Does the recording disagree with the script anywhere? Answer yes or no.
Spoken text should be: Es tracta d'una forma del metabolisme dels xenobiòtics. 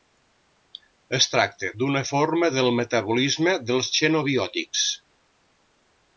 no